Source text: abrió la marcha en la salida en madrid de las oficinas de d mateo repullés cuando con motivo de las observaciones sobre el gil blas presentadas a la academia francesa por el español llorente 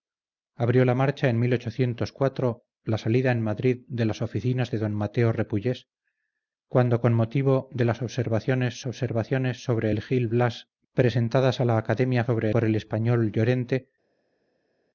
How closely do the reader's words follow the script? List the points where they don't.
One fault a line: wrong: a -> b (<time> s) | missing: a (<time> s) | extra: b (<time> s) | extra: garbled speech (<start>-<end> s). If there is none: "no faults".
extra: observaciones (8.9 s)
wrong: francesa -> sobre (12.2 s)